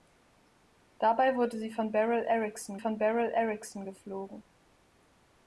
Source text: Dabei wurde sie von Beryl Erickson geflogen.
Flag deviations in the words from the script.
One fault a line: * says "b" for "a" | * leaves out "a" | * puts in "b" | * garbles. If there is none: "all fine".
* puts in "von Beryl Erickson"